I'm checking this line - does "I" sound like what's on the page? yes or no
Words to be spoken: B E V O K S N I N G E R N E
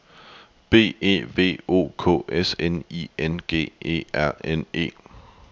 yes